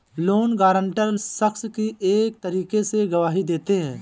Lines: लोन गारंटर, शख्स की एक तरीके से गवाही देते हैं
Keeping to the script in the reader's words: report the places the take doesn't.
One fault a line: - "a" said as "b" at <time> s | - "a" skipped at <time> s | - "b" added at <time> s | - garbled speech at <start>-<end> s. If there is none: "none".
none